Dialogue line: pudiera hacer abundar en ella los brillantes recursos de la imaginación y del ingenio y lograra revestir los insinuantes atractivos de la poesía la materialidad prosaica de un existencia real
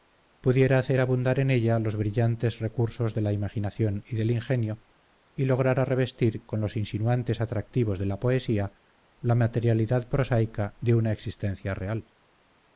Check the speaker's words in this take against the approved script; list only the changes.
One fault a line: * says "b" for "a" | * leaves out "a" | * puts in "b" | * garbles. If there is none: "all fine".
* puts in "con"
* says "una" for "un"